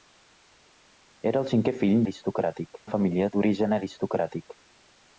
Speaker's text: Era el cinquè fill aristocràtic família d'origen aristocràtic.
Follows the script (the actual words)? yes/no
yes